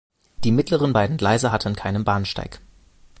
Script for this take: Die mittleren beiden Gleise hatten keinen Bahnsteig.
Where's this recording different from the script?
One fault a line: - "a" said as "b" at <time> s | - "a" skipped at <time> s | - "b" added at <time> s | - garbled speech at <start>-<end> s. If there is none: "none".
none